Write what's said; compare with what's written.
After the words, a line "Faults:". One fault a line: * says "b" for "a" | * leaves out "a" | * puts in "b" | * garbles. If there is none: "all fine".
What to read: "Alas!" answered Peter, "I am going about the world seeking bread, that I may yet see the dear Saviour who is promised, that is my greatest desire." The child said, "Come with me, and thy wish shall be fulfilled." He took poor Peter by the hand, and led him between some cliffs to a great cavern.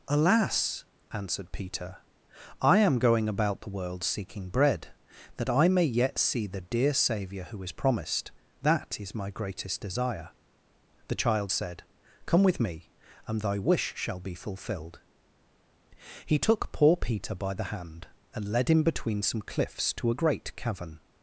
"Alas!" answered Peter, "I am going about the world seeking bread, that I may yet see the dear Saviour who is promised, that is my greatest desire." The child said, "Come with me, and thy wish shall be fulfilled." He took poor Peter by the hand, and led him between some cliffs to a great cavern.
Faults:
all fine